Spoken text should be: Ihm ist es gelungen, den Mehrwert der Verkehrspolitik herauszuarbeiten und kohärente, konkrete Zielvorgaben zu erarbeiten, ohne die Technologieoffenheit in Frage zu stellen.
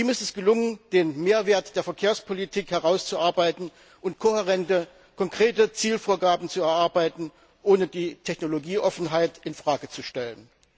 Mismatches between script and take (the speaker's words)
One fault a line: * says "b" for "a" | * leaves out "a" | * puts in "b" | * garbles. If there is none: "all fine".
all fine